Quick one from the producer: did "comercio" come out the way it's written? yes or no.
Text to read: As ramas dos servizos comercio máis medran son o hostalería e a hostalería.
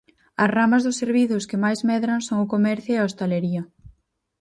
no